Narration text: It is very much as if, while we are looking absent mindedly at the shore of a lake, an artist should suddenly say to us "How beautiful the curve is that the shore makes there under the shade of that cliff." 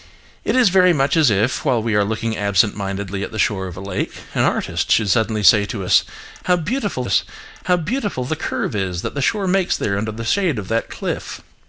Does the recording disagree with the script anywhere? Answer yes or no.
yes